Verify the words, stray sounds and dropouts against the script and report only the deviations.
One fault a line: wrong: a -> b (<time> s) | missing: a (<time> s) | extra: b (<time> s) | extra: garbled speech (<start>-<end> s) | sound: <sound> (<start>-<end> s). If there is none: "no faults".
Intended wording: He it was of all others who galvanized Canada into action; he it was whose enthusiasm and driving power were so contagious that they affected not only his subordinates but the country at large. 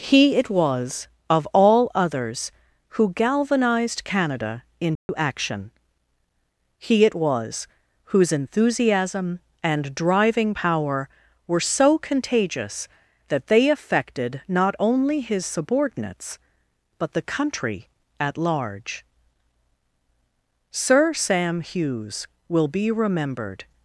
sound: dropout (5.0-5.1 s)
extra: Sir Sam Hughes will be remembered (20.7 s)